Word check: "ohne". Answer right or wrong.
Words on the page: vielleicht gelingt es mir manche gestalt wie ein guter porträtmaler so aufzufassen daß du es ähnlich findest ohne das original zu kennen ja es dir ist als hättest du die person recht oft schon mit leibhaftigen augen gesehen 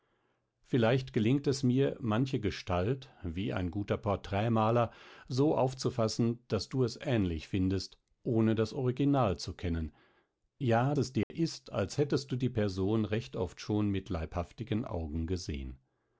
right